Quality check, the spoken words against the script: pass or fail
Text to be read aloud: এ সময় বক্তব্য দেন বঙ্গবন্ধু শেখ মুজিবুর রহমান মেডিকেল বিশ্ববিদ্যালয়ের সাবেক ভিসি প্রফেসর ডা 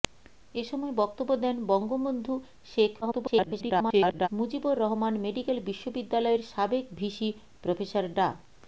fail